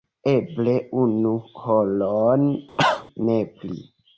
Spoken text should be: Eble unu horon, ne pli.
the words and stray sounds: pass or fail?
fail